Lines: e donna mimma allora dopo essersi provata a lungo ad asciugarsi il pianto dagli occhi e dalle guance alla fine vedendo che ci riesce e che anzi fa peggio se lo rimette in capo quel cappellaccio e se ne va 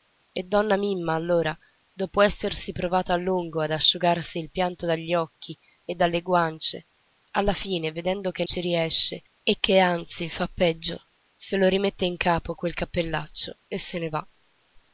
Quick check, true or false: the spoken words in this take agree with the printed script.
true